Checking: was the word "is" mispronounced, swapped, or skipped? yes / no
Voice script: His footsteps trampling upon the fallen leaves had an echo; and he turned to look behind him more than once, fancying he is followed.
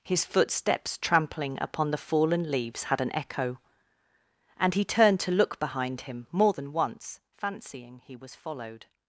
yes